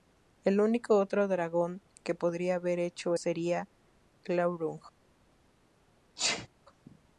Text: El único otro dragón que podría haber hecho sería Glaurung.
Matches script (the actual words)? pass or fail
pass